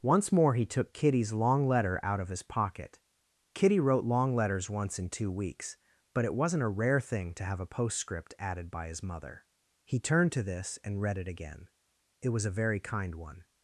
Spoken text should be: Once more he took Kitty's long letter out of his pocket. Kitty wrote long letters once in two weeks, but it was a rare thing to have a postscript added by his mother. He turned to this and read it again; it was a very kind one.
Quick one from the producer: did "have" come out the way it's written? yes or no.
yes